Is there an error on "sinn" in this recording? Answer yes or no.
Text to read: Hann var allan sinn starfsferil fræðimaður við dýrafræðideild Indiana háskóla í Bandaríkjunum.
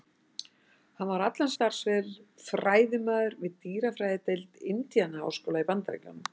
yes